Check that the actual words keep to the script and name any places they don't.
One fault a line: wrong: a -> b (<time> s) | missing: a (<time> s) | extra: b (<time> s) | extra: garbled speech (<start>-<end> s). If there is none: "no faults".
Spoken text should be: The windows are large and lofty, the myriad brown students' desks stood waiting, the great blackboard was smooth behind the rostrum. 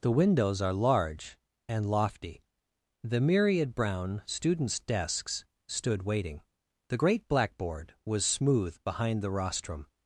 no faults